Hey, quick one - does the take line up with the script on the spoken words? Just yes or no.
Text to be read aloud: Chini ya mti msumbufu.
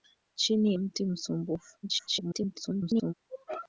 no